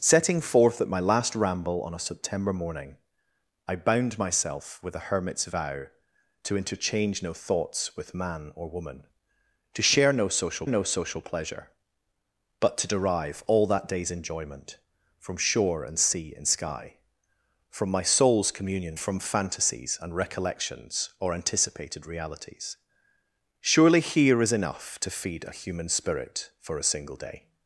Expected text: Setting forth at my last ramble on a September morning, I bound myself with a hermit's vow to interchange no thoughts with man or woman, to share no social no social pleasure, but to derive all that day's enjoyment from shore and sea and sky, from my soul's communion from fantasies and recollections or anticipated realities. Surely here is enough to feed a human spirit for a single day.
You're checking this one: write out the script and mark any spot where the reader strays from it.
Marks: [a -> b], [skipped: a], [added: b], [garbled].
Setting forth at my last ramble on a September morning, I bound myself with a hermit's vow to interchange no thoughts with man or woman, to share no social no social pleasure, but to derive all that day's enjoyment from shore and sea and sky, from my soul's communion from fantasies and recollections or anticipated realities. Surely here is enough to feed a human spirit for a single day.